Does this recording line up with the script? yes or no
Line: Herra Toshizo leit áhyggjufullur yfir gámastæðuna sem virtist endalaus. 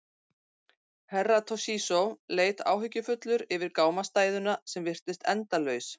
yes